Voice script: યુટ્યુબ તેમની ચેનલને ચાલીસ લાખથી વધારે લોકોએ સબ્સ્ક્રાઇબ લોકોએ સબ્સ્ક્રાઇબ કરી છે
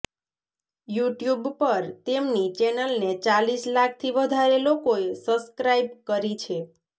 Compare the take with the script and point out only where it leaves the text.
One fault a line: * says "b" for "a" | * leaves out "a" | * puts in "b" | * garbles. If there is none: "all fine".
* puts in "પર"
* leaves out "લોકોએ સબ્સ્ક્રાઇબ"